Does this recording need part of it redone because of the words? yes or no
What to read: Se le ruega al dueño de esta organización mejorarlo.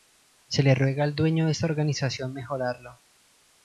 no